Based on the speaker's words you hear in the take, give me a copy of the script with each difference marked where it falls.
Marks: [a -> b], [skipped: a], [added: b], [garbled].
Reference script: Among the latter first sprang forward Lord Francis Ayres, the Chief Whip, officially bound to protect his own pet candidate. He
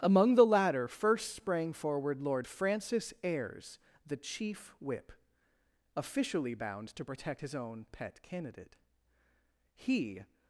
Among the latter first sprang forward Lord Francis Ayres, the Chief Whip, officially bound to protect his own pet candidate. He